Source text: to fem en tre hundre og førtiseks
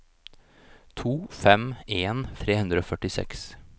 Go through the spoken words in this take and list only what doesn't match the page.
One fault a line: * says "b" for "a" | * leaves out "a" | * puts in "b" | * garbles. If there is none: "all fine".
all fine